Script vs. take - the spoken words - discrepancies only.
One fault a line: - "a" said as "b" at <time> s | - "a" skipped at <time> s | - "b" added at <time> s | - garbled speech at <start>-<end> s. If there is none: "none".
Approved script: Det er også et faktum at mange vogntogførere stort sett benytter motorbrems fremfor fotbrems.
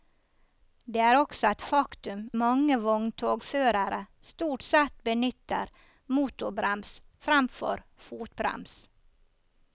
- "at" skipped at 2.2 s